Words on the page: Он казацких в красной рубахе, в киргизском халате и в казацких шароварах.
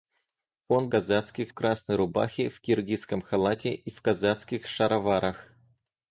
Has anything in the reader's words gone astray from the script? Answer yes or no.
no